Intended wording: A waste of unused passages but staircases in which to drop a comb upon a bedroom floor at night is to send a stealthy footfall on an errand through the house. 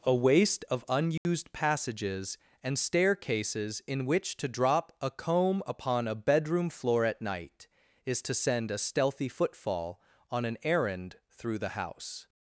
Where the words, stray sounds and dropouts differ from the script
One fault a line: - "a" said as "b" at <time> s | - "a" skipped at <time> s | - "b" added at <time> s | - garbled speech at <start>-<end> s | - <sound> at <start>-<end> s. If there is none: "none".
- dropout at 1.2-1.3 s
- "but" said as "and" at 2.6 s